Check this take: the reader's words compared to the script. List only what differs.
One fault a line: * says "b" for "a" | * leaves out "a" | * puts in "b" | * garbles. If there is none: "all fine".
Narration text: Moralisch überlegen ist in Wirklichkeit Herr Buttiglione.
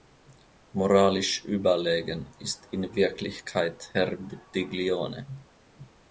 all fine